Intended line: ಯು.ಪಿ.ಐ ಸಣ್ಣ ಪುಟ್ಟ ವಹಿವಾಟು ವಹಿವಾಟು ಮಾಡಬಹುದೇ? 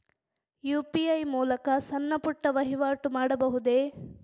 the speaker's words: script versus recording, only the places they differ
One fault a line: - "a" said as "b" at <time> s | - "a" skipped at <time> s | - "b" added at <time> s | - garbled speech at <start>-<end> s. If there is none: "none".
- "ಮೂಲಕ" added at 1.2 s
- "ವಹಿವಾಟು" skipped at 3.1 s